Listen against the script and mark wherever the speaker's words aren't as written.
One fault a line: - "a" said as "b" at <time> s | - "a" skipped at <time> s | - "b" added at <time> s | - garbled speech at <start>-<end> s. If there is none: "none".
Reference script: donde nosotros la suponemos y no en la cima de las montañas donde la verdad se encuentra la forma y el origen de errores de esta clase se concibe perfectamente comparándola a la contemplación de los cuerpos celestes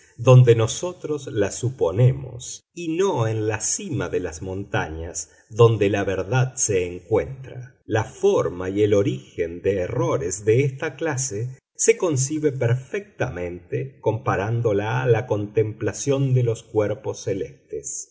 none